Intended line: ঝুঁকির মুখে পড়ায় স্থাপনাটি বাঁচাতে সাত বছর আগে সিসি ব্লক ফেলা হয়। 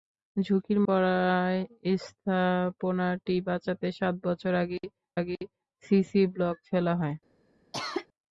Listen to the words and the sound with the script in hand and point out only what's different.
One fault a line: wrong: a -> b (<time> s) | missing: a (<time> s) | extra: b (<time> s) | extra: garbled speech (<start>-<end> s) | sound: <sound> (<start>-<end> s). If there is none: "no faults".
missing: মুখে (0.8 s)
extra: আগে (5.2 s)
sound: cough (7.7-8.1 s)